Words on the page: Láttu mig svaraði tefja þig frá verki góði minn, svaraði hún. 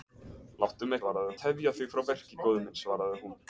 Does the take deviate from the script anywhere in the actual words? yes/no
no